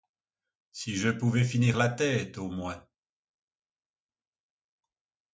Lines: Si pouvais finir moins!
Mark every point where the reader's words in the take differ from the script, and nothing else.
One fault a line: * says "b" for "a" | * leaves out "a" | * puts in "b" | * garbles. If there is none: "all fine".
* puts in "je"
* puts in "la tête au"